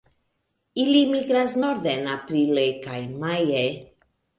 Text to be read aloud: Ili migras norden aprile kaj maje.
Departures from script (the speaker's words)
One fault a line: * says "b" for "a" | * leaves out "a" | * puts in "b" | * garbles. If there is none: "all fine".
all fine